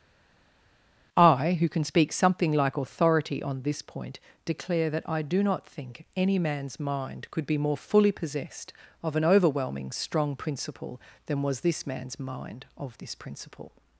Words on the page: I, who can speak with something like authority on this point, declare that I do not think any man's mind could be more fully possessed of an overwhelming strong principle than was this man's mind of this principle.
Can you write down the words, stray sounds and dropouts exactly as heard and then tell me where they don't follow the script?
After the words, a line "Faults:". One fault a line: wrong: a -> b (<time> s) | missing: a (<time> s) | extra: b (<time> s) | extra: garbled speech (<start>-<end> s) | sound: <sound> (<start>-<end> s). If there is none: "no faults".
I, who can speak something like authority on this point, declare that I do not think any man's mind could be more fully possessed of an overwhelming strong principle than was this man's mind of this principle.
Faults:
missing: with (2.1 s)